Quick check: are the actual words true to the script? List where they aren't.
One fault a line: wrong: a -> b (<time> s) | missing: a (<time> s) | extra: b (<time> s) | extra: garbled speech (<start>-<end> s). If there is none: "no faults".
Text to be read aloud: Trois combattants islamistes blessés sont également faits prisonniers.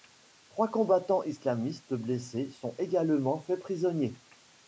no faults